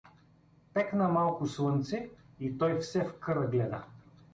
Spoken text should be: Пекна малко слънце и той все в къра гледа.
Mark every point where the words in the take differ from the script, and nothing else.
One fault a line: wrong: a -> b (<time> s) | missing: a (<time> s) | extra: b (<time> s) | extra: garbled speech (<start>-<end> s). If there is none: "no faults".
no faults